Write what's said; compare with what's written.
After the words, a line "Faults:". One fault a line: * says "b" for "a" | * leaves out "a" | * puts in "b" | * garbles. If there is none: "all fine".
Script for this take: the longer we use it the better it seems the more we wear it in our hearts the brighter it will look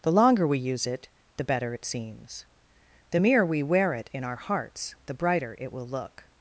the longer we use it the better it seems the mere we wear it in our hearts the brighter it will look
Faults:
* says "mere" for "more"